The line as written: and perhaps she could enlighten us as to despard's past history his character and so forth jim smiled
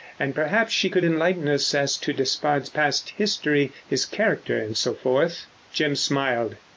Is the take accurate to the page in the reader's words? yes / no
yes